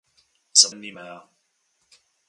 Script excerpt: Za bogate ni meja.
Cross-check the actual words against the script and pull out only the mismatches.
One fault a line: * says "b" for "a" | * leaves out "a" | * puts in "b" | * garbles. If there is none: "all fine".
* leaves out "bogate"